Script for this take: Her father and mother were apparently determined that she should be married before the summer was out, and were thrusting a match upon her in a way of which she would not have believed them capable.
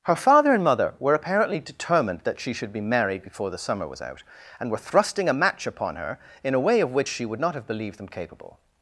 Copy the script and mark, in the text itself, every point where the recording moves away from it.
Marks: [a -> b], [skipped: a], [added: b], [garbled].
Her father and mother were apparently determined that she should be married before the summer was out, and were thrusting a match upon her in a way of which she would not have believed them capable.